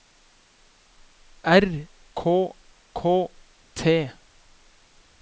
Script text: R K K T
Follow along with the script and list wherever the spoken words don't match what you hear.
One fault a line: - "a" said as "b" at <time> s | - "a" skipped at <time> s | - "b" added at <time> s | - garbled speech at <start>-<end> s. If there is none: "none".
none